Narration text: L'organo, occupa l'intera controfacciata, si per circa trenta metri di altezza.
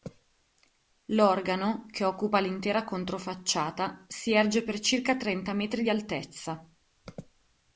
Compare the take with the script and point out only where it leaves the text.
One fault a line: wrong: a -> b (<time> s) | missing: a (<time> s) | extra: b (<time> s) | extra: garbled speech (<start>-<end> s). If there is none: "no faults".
extra: che (1.9 s)
extra: erge (4.3 s)